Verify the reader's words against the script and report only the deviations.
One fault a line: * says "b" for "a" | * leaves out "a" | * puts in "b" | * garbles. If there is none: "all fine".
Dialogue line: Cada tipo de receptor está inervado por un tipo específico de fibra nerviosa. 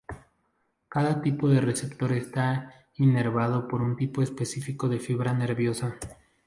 all fine